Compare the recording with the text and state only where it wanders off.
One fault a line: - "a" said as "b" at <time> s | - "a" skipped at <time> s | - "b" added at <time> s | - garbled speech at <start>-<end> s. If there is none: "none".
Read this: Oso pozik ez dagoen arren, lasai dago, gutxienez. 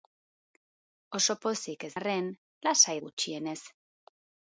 - "dagoen" skipped at 1.9 s
- "dago" skipped at 3.0 s